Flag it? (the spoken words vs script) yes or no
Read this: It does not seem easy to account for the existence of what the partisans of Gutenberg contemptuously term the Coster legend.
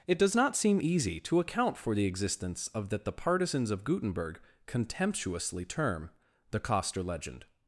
yes